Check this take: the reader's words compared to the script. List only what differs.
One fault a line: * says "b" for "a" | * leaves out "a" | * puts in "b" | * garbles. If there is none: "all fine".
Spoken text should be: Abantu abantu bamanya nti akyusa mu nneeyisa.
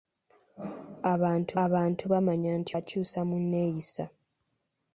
all fine